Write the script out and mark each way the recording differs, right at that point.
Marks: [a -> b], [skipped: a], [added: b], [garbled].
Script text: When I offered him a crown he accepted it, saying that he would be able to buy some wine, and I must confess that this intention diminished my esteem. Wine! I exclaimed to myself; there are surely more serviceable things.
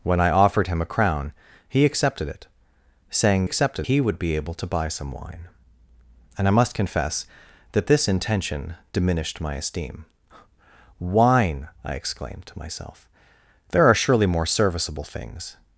When I offered him a crown he accepted it, saying [that -> accepted] he would be able to buy some wine, and I must confess that this intention diminished my esteem. Wine! I exclaimed to myself; there are surely more serviceable things.